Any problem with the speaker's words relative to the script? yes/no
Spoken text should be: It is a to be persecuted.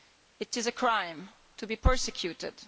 yes